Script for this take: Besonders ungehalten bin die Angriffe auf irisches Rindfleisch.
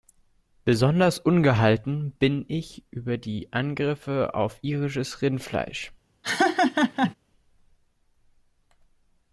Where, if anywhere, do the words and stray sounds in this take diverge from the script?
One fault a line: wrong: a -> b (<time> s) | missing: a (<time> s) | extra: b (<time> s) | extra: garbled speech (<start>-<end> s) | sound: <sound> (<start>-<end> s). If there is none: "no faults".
extra: ich über (2.5 s)
sound: laugh (6.2-7.1 s)